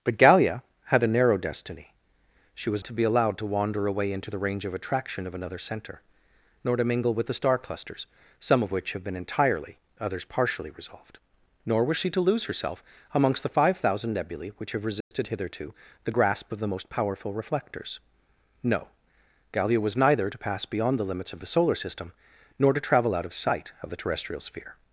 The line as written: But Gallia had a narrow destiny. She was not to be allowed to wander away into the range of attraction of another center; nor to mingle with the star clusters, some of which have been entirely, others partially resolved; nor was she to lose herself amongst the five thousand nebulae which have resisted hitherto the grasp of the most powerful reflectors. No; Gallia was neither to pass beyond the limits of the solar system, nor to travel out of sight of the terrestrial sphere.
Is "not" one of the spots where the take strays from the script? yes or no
yes